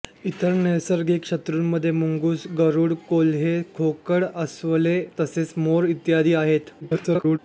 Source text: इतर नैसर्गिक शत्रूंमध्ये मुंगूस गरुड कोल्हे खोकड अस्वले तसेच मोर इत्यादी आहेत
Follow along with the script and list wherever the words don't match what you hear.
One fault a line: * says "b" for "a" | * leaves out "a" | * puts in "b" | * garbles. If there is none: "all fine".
* garbles